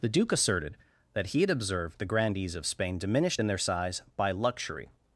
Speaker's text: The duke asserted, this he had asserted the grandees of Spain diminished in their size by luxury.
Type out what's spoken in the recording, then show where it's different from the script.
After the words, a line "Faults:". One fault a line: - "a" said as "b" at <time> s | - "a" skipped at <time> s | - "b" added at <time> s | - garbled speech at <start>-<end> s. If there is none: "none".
The duke asserted, that he had observed the grandees of Spain diminished in their size by luxury.
Faults:
- "this" said as "that" at 1.1 s
- "asserted" said as "observed" at 1.5 s